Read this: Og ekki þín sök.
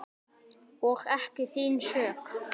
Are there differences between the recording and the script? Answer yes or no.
no